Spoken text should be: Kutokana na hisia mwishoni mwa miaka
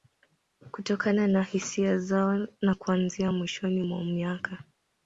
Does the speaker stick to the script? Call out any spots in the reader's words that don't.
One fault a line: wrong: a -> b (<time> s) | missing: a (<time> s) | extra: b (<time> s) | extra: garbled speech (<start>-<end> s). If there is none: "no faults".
extra: zao na kuanzia (2.0 s)